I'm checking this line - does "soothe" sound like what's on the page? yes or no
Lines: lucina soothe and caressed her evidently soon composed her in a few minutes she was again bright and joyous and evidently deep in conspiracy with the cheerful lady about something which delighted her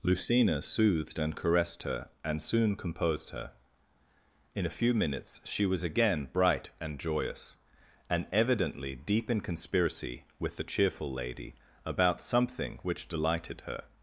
no